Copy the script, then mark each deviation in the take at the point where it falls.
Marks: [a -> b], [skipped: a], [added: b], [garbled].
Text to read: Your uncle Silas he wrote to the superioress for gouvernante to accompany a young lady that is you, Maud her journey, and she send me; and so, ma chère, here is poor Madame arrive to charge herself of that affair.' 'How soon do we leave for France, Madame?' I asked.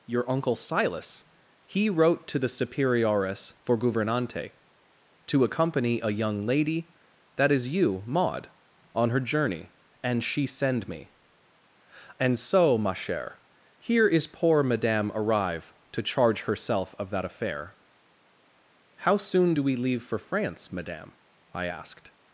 Your uncle Silas he wrote to the superioress for gouvernante to accompany a young lady that is you, Maud [added: on] her journey, and she send me; and so, ma chère, here is poor Madame arrive to charge herself of that affair.' 'How soon do we leave for France, Madame?' I asked.